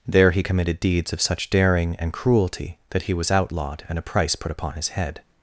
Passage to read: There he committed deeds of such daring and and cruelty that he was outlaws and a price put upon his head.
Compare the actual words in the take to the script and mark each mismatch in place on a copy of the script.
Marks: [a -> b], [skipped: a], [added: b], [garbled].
There he committed deeds of such daring and [skipped: and] cruelty that he was [outlaws -> outlawed] and a price put upon his head.